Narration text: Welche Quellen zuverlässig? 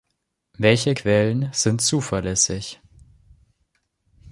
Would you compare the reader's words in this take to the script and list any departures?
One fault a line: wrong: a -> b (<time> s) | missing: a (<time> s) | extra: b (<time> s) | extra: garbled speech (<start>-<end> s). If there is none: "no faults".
extra: sind (1.5 s)